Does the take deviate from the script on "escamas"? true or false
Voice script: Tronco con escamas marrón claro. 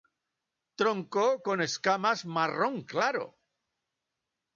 false